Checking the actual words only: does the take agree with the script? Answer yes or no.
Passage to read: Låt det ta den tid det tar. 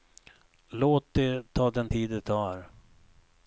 yes